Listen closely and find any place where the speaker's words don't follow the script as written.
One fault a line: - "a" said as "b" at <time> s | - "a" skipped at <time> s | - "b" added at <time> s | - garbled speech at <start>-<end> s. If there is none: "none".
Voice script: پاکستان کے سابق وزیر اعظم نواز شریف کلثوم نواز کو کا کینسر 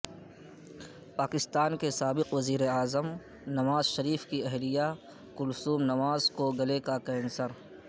- "کی اہلیہ" added at 4.3 s
- "گلے" added at 6.6 s